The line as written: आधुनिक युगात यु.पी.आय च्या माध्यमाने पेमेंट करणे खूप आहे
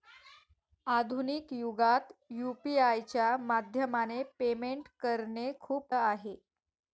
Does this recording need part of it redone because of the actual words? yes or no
no